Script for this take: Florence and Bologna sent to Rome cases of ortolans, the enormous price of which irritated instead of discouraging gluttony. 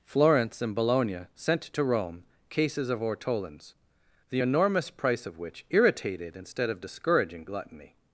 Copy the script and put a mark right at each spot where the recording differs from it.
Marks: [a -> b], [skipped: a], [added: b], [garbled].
Florence and Bologna sent to Rome cases of ortolans, the enormous price of which irritated instead of discouraging gluttony.